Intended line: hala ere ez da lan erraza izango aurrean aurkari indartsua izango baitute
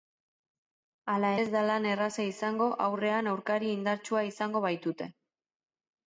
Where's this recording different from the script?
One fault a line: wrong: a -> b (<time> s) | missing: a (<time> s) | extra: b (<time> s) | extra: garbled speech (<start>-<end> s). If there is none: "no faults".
missing: ere (1.3 s)